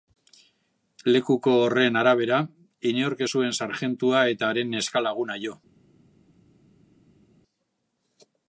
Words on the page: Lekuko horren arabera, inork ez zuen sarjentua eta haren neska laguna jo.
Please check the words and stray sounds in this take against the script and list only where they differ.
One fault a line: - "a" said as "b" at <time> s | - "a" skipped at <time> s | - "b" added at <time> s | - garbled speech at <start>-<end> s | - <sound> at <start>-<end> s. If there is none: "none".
none